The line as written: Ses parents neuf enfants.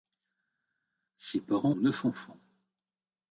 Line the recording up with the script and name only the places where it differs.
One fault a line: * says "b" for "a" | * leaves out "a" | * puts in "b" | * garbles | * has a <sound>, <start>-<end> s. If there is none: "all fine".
all fine